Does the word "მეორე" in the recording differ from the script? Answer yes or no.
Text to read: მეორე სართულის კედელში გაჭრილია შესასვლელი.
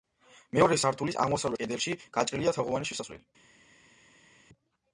no